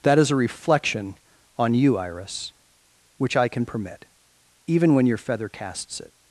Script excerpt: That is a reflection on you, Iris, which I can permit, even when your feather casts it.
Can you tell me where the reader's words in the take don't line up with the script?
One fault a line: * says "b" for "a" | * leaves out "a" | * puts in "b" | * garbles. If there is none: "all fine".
all fine